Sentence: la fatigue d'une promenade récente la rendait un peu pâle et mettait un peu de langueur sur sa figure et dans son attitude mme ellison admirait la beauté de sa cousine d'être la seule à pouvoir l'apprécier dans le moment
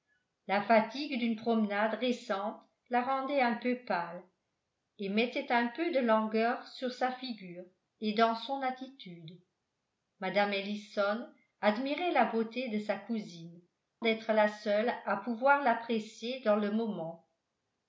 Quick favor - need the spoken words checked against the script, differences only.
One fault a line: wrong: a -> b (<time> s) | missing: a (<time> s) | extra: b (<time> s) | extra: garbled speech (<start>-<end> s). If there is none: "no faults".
no faults